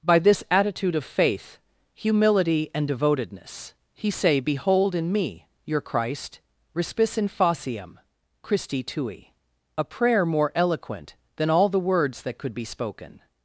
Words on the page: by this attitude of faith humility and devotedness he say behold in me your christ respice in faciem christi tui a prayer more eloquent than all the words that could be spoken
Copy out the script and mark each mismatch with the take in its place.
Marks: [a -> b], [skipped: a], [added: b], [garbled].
by this attitude of faith humility and devotedness he say behold in me your christ respice in faciem christi tui a prayer more eloquent than all the words that could be spoken